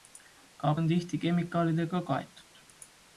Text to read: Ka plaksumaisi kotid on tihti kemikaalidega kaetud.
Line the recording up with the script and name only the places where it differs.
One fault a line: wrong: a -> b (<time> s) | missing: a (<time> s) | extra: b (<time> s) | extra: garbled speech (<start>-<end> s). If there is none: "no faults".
missing: plaksumaisi kotid (0.7 s)